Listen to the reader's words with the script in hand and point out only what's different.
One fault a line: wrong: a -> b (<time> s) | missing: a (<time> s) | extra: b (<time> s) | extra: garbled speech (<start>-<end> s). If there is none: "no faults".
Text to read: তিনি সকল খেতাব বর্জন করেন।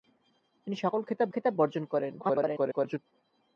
extra: খেতাব (1.3 s)
extra: garbled speech (2.2-3.0 s)